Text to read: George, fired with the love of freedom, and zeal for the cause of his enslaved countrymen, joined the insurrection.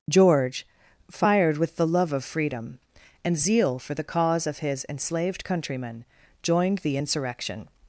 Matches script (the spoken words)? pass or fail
pass